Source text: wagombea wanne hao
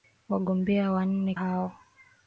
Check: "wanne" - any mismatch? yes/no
no